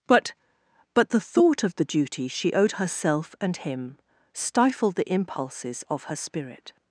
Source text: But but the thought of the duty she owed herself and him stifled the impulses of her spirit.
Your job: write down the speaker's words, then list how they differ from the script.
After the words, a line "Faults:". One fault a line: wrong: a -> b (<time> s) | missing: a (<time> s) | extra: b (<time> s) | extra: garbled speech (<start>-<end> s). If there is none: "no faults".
But but the thought of the duty she owed herself and him stifled the impulses of her spirit.
Faults:
no faults